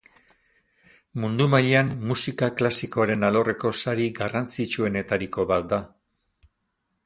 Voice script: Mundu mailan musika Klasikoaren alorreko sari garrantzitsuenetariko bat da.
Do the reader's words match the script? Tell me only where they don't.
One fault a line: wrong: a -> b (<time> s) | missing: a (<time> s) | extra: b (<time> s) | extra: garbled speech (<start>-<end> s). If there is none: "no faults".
no faults